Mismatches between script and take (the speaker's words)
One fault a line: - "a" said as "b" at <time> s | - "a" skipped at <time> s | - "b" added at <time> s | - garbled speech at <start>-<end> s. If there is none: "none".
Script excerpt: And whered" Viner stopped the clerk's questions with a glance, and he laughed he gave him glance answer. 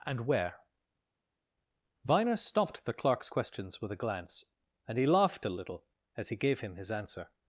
- "whered" said as "where" at 0.2 s
- "a little as" added at 5.4 s
- "glance" said as "his" at 6.7 s